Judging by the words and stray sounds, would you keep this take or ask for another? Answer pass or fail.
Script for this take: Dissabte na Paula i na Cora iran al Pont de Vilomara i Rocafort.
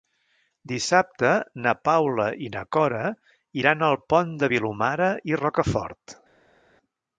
pass